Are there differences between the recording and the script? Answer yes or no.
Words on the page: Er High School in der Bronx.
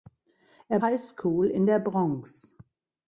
no